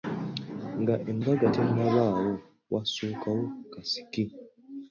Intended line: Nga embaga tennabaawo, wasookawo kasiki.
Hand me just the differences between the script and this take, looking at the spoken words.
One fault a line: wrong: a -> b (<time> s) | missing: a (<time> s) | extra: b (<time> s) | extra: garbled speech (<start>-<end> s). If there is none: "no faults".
no faults